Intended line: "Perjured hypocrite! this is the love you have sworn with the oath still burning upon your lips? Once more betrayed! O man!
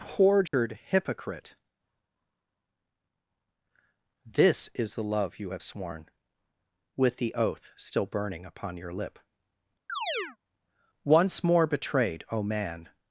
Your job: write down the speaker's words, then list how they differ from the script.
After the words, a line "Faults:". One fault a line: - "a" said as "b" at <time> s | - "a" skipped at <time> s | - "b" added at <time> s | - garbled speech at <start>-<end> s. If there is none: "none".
"Perjured hypocrite! this is the love you have sworn with the oath still burning upon your lip? Once more betrayed! O man!
Faults:
- "lips" said as "lip" at 8.9 s